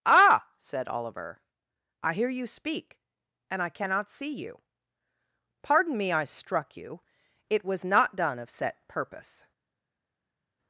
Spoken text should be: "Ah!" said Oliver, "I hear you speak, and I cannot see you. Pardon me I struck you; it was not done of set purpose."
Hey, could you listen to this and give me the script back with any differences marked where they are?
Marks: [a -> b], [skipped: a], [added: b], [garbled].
"Ah!" said Oliver, "I hear you speak, and I cannot see you. Pardon me I struck you; it was not done of set purpose."